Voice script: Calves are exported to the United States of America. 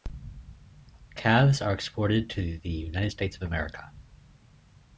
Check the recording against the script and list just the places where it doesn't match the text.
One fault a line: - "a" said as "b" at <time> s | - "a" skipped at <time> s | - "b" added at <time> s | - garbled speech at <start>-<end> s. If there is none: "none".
none